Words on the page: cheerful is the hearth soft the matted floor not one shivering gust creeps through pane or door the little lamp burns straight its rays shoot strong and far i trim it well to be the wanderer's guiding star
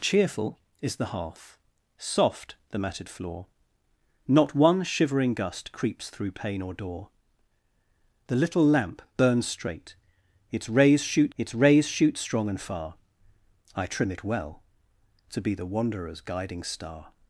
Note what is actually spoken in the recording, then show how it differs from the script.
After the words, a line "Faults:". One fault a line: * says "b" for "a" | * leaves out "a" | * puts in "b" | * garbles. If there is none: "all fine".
cheerful is the hearth soft the matted floor not one shivering gust creeps through pane or door the little lamp burns straight its rays shoot its rays shoot strong and far i trim it well to be the wanderer's guiding star
Faults:
* puts in "its rays shoot"